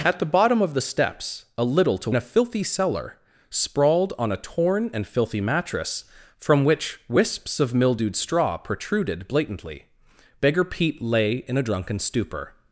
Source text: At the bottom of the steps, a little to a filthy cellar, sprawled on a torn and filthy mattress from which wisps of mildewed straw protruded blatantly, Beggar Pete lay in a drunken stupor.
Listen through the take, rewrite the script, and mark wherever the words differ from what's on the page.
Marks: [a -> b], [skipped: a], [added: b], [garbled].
At the bottom of the steps, a little to a filthy cellar, sprawled on a torn and filthy mattress from which wisps of mildewed straw protruded blatantly, Beggar Pete lay in a drunken stupor.